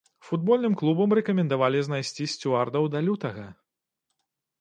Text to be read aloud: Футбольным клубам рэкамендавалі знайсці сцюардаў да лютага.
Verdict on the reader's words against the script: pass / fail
pass